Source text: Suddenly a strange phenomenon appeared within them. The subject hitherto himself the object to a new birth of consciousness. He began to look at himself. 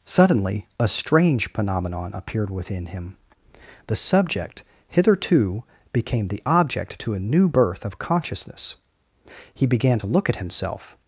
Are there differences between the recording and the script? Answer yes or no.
yes